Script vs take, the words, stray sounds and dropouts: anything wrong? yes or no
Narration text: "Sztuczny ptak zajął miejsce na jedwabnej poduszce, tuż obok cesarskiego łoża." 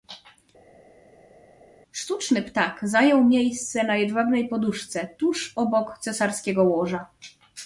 no